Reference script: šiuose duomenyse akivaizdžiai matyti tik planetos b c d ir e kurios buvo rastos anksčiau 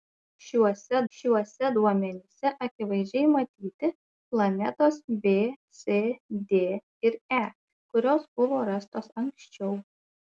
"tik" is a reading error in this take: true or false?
true